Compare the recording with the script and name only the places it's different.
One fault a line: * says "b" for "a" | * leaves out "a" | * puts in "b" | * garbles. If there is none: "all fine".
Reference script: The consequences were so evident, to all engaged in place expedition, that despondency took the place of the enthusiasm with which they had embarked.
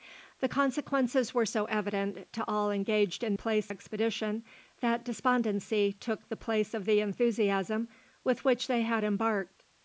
all fine